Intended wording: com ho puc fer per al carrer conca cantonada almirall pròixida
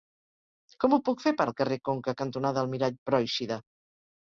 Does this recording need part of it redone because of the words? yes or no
no